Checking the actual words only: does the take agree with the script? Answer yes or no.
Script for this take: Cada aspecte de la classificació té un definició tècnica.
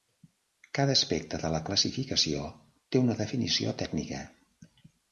no